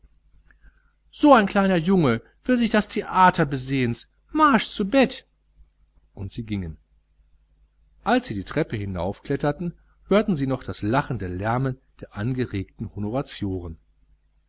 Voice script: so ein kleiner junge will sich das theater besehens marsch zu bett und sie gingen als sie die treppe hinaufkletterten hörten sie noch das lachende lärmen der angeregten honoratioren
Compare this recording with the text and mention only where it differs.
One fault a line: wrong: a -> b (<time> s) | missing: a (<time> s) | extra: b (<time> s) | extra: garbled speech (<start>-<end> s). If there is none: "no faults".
no faults